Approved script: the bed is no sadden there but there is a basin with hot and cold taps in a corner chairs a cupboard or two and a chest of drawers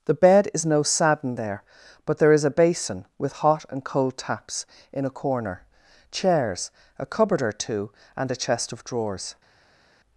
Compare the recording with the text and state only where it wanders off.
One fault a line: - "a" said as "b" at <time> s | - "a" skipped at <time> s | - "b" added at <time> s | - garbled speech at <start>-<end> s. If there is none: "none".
none